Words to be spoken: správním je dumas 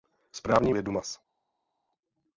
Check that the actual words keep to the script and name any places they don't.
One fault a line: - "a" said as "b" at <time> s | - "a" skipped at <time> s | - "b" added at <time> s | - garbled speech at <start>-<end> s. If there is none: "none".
none